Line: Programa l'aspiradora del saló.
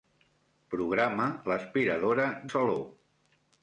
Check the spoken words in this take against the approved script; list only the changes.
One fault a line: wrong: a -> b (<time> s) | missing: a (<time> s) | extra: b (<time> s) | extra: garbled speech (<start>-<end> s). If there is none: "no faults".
missing: del (2.3 s)